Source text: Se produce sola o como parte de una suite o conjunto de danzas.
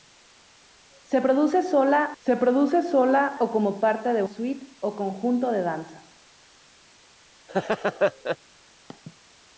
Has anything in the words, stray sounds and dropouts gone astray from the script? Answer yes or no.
yes